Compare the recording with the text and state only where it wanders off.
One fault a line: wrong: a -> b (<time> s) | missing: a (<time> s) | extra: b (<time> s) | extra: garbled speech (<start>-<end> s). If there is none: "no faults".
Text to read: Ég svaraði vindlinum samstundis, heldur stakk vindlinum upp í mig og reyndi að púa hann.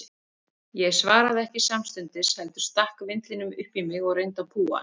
wrong: vindlinum -> ekki (1.4 s)